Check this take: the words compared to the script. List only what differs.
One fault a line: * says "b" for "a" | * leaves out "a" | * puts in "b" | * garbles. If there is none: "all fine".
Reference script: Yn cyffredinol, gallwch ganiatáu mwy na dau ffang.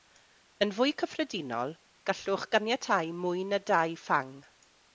* puts in "fwy"